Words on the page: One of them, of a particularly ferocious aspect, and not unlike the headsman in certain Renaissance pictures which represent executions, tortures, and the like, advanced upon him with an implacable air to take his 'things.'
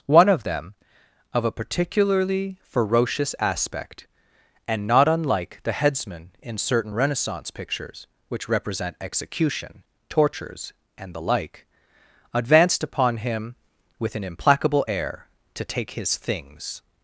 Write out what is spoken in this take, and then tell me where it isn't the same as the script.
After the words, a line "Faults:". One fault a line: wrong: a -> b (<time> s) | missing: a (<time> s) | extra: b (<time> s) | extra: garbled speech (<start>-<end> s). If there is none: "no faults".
One of them, of a particularly ferocious aspect, and not unlike the headsman in certain Renaissance pictures which represent execution, tortures, and the like, advanced upon him with an implacable air to take his 'things.'
Faults:
wrong: executions -> execution (9.0 s)